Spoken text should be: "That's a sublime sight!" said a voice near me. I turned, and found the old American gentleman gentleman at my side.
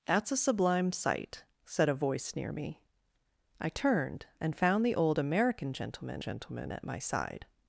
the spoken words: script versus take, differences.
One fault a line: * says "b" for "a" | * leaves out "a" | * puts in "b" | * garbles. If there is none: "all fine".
all fine